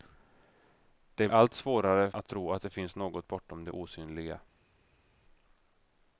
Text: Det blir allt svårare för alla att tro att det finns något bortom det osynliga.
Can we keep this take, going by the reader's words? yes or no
no